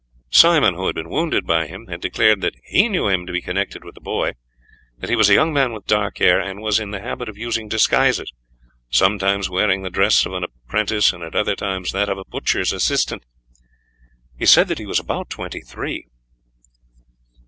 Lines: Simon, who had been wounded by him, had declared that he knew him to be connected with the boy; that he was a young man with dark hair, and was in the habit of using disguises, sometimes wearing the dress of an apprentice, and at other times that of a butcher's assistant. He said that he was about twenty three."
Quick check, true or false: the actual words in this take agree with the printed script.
true